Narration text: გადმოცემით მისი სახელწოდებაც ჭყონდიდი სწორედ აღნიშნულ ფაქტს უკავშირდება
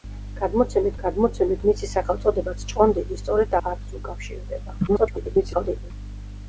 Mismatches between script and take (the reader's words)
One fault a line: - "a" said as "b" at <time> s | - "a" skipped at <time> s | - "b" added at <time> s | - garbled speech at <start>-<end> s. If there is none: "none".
- "გადმოცემით" added at 1.0 s
- "აღნიშნულ" skipped at 3.5 s
- garbled speech at 4.9-5.9 s